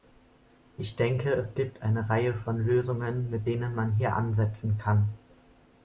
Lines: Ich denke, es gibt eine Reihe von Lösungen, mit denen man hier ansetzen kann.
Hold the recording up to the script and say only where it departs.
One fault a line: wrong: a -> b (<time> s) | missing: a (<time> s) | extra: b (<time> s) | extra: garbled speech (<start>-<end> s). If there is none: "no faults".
no faults